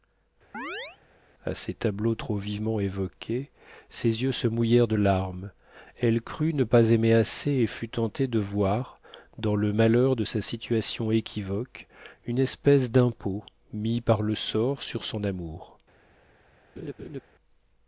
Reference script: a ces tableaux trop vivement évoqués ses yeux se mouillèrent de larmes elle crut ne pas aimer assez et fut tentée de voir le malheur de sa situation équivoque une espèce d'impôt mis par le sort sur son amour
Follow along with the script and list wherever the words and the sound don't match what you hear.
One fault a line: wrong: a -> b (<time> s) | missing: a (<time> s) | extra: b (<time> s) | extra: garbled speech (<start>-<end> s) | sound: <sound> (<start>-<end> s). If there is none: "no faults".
sound: chirp (0.5-1.0 s)
extra: dans (9.4 s)
sound: laugh (16.8-17.2 s)